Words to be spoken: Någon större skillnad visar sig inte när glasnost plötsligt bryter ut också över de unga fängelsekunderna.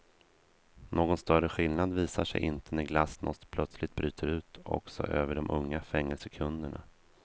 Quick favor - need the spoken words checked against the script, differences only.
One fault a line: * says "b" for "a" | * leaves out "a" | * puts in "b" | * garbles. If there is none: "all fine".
all fine